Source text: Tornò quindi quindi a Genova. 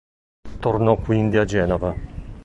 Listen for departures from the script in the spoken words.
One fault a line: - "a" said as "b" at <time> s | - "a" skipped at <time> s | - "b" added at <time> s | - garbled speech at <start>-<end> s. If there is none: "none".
- "quindi" skipped at 1.4 s